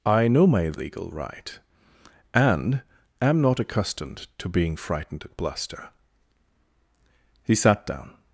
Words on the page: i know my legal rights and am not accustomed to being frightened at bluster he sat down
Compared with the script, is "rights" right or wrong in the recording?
wrong